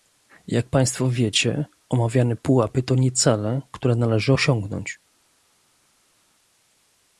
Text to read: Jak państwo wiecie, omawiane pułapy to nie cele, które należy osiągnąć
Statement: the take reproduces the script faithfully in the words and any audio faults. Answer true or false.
true